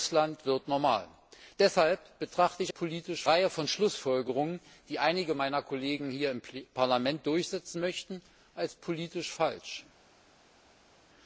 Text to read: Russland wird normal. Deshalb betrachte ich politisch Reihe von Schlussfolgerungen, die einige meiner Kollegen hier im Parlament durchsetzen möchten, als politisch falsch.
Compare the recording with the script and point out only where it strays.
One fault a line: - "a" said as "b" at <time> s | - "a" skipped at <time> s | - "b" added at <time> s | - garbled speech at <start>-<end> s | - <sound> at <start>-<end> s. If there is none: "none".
none